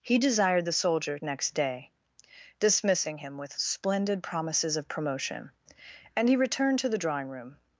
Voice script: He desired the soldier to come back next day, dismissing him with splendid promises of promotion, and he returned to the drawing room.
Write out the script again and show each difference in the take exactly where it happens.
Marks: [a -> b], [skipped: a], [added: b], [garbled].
He desired the soldier [skipped: to come back] next day, dismissing him with splendid promises of promotion, and he returned to the drawing room.